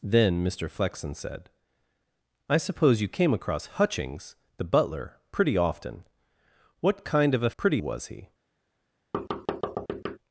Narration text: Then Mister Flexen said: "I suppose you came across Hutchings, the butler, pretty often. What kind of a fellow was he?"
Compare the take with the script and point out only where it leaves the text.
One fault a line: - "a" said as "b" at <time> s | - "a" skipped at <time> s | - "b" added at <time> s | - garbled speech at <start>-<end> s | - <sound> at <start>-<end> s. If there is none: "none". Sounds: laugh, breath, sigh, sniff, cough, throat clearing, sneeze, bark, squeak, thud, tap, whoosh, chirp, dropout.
- "fellow" said as "pretty" at 7.6 s
- thud at 9.1-10.2 s